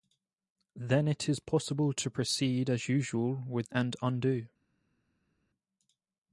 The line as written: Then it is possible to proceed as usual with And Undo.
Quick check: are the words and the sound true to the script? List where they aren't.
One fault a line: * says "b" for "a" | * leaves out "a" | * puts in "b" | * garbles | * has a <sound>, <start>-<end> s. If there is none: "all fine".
all fine